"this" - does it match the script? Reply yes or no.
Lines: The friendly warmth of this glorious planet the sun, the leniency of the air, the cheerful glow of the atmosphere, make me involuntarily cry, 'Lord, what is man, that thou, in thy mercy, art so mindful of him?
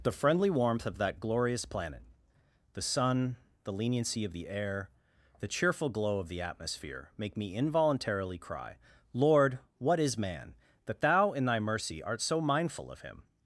no